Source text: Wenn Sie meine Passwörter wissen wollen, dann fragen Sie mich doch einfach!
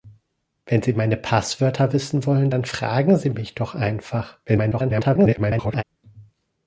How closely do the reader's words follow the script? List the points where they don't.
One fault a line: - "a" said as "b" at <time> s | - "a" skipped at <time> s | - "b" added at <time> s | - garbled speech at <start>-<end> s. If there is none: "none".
- garbled speech at 4.5-5.8 s